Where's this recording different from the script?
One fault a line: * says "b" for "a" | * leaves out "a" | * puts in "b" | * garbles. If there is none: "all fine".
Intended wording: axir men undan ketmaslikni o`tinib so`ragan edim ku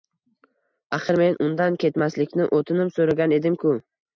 all fine